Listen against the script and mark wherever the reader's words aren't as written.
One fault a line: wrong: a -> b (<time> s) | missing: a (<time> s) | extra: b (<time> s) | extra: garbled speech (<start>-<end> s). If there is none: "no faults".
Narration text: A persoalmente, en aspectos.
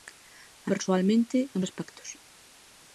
no faults